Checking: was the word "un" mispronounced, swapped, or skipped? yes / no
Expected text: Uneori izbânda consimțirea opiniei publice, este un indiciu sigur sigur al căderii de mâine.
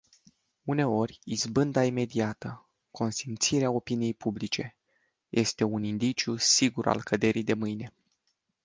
no